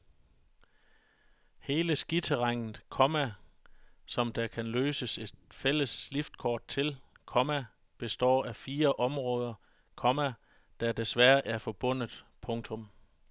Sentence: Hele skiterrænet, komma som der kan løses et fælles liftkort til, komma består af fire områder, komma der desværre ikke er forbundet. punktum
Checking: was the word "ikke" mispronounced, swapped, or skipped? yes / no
yes